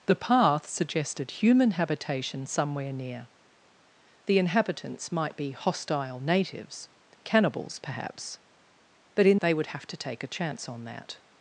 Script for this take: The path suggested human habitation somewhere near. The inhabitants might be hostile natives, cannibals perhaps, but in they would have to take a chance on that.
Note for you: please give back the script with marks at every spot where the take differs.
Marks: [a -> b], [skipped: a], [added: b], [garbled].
The path suggested human habitation somewhere near. The inhabitants might be hostile natives, cannibals perhaps, but in they would have to take a chance on that.